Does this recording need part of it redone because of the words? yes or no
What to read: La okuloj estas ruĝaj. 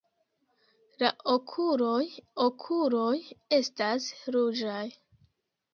yes